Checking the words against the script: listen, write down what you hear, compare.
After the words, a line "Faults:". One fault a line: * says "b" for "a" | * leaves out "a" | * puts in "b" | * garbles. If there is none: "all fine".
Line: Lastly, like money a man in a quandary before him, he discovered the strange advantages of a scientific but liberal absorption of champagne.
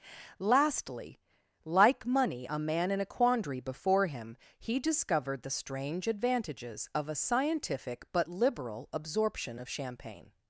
Lastly, like money a man in a quandary before him, he discovered the strange advantages of a scientific but liberal absorption of champagne.
Faults:
all fine